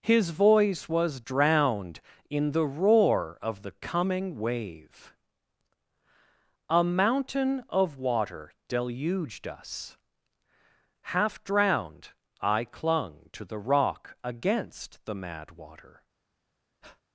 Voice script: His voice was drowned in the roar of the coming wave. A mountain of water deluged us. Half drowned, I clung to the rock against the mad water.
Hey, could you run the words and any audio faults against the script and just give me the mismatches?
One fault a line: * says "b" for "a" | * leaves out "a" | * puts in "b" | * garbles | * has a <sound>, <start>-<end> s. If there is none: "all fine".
* has a breath, 16.8-17.0 s